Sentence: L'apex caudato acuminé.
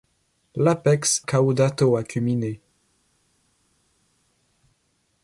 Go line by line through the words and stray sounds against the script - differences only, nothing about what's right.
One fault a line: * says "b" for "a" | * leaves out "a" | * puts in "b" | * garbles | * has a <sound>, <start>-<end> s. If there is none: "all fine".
all fine